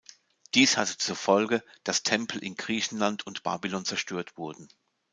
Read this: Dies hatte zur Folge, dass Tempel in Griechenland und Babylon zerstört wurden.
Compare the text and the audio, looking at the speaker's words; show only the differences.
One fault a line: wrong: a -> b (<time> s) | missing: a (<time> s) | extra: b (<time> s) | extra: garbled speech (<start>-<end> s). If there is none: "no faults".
no faults